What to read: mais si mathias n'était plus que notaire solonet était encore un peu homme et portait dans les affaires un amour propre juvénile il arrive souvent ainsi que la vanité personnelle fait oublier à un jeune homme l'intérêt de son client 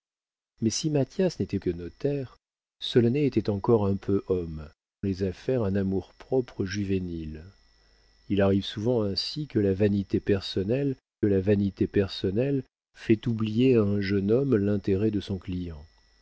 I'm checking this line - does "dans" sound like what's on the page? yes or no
no